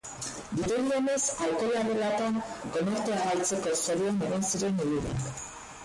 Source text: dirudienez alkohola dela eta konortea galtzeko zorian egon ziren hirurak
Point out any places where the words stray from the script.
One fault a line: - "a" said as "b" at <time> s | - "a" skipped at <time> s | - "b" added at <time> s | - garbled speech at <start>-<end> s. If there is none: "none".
none